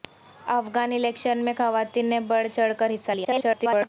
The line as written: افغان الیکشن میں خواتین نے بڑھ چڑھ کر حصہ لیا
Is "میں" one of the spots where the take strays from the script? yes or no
no